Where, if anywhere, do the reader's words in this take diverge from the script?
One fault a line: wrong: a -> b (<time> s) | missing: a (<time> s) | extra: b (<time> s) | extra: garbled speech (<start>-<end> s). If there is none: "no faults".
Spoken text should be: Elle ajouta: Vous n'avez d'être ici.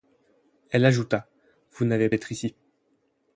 no faults